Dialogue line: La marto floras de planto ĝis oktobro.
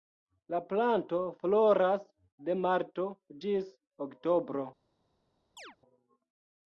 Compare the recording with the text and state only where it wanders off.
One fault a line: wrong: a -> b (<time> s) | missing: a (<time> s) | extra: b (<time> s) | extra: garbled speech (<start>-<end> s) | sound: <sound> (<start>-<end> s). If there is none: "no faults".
wrong: marto -> planto (0.7 s)
wrong: planto -> marto (2.6 s)
sound: chirp (5.6-5.8 s)